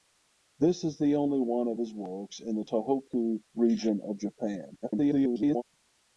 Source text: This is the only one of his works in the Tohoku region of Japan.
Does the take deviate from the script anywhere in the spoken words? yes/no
yes